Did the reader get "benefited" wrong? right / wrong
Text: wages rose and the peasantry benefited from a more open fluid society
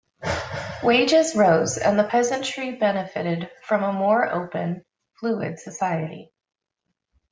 right